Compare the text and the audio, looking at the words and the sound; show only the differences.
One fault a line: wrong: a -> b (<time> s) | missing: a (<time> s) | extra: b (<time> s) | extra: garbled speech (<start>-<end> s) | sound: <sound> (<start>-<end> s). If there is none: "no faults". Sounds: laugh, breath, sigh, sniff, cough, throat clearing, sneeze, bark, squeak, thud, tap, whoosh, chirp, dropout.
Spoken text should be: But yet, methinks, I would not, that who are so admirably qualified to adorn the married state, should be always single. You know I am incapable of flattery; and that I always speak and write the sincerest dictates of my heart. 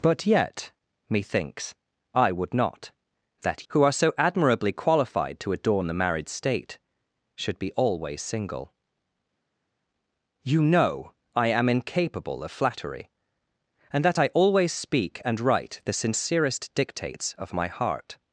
no faults